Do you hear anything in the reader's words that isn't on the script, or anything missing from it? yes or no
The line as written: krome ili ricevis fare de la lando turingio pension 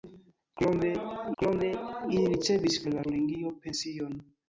yes